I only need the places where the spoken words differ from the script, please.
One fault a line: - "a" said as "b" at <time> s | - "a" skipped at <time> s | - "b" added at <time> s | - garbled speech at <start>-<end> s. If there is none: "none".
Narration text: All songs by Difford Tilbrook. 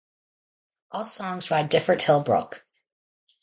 none